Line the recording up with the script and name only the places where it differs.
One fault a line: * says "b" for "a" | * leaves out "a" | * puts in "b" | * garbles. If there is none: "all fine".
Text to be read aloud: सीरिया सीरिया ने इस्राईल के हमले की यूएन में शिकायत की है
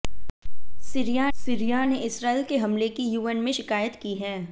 all fine